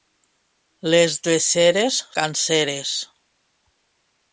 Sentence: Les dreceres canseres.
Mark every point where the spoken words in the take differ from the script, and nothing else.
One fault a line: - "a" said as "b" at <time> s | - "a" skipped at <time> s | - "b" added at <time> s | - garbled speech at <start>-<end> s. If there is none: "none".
none